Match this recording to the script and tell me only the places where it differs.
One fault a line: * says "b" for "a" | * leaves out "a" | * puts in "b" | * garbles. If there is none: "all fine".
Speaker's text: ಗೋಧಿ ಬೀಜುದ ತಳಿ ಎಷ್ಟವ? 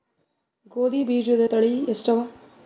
all fine